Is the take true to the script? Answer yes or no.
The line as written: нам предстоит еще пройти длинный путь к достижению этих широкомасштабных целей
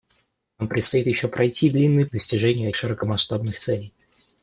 no